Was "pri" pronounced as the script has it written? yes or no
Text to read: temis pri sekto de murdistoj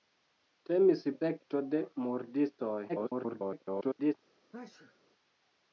no